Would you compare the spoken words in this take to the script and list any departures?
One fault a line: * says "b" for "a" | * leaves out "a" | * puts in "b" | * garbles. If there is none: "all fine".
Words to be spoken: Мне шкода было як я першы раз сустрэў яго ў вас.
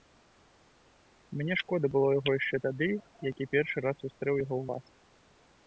* puts in "яго яшчэ тады"